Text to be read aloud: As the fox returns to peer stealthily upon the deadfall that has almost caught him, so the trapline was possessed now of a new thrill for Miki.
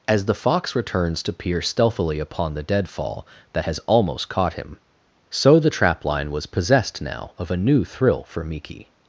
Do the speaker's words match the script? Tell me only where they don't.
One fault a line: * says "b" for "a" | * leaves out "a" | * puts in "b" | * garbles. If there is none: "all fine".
all fine